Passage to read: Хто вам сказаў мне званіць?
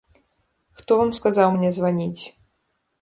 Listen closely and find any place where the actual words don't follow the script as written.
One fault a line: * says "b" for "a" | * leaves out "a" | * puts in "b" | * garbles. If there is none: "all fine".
all fine